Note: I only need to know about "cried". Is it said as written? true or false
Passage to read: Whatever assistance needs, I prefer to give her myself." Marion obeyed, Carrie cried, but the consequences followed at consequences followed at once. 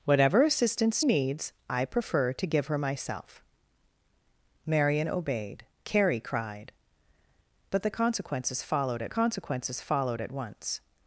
true